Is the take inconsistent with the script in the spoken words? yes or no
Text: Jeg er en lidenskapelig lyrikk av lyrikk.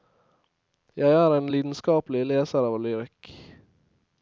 yes